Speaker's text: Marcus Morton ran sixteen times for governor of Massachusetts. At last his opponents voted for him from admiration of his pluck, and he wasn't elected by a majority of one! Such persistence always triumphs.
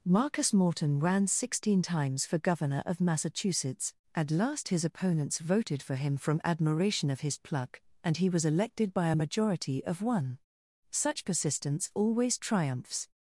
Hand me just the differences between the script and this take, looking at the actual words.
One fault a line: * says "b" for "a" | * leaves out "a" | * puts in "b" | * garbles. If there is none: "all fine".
* says "was" for "wasn't"